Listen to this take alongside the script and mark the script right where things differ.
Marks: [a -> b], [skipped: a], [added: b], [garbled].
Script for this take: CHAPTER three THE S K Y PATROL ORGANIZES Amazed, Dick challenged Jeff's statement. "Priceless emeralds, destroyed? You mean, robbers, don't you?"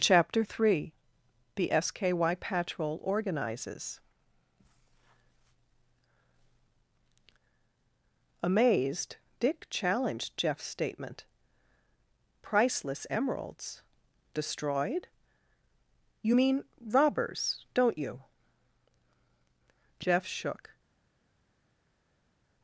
CHAPTER three THE S K Y PATROL ORGANIZES Amazed, Dick challenged Jeff's statement. "Priceless emeralds, destroyed? You mean, robbers, don't you?" [added: Jeff shook]